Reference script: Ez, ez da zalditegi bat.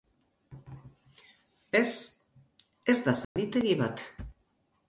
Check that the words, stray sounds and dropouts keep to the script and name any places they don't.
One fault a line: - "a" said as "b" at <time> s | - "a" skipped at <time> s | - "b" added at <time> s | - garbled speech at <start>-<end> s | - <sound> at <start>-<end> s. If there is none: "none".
- dropout at 3.2-3.4 s